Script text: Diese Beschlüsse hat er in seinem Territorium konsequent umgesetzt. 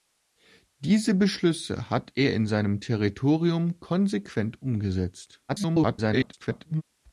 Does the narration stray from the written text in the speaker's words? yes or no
yes